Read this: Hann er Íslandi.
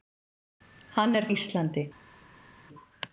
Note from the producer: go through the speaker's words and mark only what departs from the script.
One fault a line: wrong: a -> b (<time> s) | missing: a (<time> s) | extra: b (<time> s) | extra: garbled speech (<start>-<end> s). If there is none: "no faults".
no faults